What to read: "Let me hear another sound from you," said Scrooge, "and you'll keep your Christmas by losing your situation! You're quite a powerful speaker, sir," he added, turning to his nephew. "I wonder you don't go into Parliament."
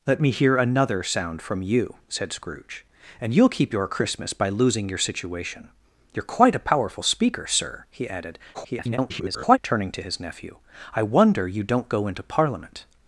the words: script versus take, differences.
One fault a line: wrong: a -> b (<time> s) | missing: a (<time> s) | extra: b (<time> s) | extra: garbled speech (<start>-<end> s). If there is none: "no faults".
extra: garbled speech (8.5-9.6 s)